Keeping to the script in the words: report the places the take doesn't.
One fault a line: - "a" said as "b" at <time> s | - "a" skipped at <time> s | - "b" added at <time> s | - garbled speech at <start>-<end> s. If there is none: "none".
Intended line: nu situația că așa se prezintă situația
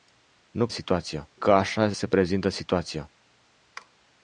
none